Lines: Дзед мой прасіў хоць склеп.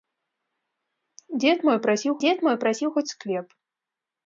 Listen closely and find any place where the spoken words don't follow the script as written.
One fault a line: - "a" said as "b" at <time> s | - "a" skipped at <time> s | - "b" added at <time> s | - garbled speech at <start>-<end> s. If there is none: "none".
- "дзед мой прасіў" added at 2.2 s